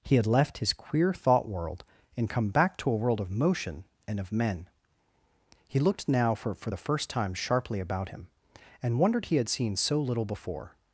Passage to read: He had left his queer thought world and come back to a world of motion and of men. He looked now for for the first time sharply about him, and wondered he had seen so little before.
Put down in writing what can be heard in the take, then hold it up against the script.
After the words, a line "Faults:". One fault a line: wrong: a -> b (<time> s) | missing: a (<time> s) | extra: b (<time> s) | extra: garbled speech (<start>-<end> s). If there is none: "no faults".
He had left his queer thought world and come back to a world of motion and of men. He looked now for for the first time sharply about him, and wondered he had seen so little before.
Faults:
no faults